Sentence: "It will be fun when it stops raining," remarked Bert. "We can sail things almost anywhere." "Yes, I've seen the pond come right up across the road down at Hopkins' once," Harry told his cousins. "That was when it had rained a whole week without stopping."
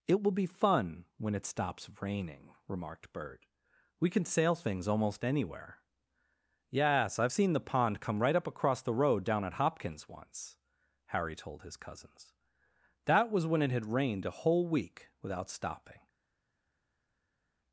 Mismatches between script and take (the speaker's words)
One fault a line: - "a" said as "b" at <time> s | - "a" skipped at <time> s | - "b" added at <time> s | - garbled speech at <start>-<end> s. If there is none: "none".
none